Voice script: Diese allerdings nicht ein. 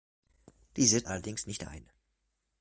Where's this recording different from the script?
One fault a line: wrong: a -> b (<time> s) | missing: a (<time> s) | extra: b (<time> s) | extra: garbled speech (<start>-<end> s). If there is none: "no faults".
no faults